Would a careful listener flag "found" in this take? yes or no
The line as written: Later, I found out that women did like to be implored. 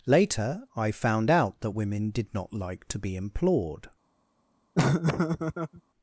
no